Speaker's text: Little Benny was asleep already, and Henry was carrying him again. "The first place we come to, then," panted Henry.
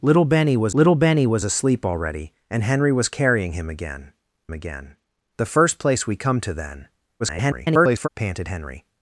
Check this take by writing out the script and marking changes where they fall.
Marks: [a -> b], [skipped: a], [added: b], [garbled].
Little Benny was [added: little Benny was] asleep already, and Henry was carrying him again. [added: again] "The first place we come to, then," [garbled] panted Henry.